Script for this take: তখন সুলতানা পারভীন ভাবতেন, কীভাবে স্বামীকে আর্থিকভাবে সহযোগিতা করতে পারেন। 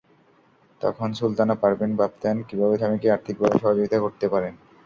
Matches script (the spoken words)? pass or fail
pass